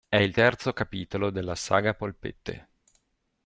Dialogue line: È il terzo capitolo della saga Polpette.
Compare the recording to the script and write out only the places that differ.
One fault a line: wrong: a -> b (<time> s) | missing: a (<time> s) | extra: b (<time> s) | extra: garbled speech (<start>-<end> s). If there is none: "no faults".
no faults